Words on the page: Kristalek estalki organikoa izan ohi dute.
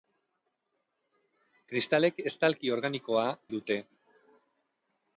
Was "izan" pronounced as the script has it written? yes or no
no